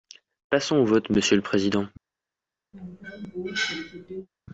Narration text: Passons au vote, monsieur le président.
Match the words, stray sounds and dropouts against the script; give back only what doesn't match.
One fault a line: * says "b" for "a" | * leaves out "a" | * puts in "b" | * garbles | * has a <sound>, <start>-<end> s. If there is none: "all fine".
* has a cough, 2.7-4.3 s